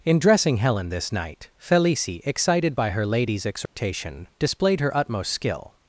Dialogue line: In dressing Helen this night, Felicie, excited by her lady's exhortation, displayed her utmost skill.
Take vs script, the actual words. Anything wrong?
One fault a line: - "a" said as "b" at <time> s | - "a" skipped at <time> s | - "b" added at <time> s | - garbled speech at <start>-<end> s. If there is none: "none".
none